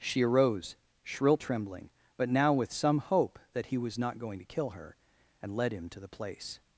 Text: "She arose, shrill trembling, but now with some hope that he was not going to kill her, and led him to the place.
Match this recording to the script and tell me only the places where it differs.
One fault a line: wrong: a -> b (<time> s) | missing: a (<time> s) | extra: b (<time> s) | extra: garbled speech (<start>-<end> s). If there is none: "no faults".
no faults